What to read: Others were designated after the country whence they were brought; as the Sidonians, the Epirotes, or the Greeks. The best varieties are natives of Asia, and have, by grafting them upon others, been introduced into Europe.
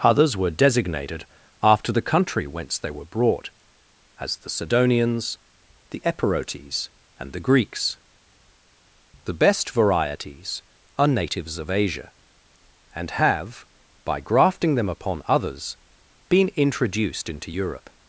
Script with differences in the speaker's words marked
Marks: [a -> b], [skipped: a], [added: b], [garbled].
Others were designated after the country whence they were brought; as the Sidonians, the Epirotes, [or -> and] the Greeks. The best varieties are natives of Asia, and have, by grafting them upon others, been introduced into Europe.